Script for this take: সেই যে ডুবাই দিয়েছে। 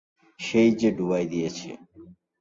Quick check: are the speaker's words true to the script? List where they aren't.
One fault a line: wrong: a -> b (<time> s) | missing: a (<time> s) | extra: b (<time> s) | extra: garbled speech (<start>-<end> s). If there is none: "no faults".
no faults